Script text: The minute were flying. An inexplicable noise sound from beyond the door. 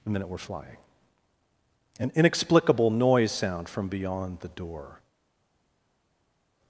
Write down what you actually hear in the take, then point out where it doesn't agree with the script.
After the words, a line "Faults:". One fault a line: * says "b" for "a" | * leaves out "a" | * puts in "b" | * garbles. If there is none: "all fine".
The minute were flying. An inexplicable noise sound from beyond the door.
Faults:
all fine